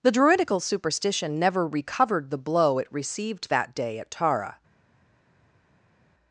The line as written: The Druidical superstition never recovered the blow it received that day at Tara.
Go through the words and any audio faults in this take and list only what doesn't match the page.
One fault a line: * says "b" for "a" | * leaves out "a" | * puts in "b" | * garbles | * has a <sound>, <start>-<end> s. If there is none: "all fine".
all fine